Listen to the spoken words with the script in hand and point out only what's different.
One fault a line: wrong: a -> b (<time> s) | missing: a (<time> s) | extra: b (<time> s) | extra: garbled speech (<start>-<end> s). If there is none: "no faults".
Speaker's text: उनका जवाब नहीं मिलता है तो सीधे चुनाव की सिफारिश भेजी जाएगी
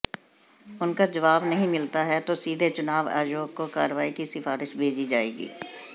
extra: आयोग को कार्रवाई (3.1 s)